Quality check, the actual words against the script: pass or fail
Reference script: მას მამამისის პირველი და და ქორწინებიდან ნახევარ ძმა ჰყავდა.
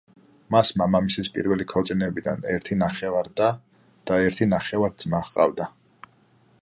fail